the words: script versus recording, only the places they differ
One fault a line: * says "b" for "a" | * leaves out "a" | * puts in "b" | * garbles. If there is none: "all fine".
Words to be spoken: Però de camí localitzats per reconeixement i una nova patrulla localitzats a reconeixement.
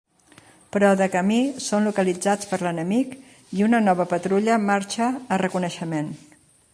* puts in "són"
* says "l'enemic" for "reconeixement"
* says "marxa" for "localitzats"